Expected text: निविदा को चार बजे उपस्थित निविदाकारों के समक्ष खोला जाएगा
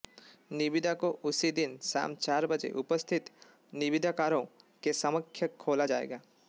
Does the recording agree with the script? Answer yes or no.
no